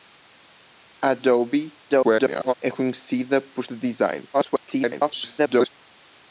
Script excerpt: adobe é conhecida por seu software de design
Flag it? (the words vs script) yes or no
yes